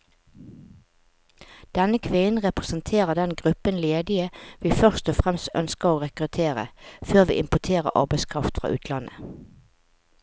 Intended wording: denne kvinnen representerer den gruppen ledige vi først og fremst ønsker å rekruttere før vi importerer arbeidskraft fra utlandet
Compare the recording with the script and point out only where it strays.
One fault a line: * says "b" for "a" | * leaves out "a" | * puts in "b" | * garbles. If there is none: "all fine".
all fine